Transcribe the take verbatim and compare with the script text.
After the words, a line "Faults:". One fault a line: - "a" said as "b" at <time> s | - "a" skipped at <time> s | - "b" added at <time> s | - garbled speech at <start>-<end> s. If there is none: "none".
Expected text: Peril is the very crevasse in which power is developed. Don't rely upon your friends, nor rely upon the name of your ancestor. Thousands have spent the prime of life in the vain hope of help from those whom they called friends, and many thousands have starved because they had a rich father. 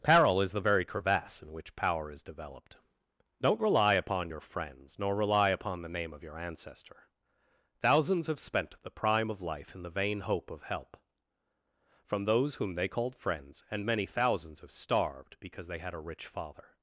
Peril is the very crevasse in which power is developed. Don't rely upon your friends, nor rely upon the name of your ancestor. Thousands have spent the prime of life in the vain hope of help from those whom they called friends, and many thousands have starved because they had a rich father.
Faults:
none